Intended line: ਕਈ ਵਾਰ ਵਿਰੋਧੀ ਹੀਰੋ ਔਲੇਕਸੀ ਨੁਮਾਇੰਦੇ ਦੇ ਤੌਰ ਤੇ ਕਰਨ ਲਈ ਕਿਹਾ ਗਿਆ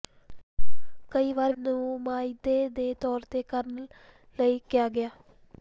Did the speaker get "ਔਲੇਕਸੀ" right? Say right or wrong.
wrong